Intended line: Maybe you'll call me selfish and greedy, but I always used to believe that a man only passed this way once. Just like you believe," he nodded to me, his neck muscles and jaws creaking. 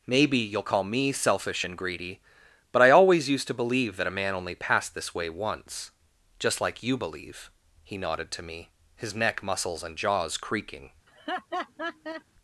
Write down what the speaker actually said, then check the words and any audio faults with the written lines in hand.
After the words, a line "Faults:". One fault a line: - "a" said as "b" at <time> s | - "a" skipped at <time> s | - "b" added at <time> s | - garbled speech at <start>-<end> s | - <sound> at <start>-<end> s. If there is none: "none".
Maybe you'll call me selfish and greedy, but I always used to believe that a man only passed this way once. Just like you believe," he nodded to me, his neck muscles and jaws creaking.
Faults:
- laugh at 11.1-12.2 s